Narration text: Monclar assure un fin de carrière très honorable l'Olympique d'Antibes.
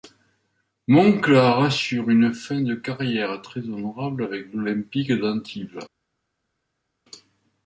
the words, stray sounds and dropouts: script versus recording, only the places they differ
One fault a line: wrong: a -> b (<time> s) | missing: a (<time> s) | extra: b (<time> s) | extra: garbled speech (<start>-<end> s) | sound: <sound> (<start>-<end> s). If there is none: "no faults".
wrong: un -> une (2.1 s)
extra: avec (4.2 s)